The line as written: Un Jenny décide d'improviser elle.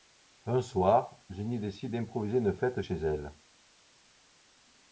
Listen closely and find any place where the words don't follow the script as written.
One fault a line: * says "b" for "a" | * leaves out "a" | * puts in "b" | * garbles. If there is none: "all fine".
* puts in "soir"
* puts in "une fête chez"